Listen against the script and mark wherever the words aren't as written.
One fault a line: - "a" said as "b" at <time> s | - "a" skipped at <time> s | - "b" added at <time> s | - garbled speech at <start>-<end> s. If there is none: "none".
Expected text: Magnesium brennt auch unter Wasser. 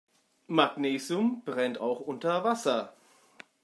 none